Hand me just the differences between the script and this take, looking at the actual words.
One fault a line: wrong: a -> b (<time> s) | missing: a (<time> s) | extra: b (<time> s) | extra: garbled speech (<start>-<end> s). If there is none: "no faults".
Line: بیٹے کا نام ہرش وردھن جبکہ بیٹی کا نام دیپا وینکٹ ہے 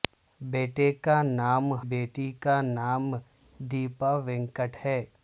missing: ہرش وردھن جبکہ (1.7 s)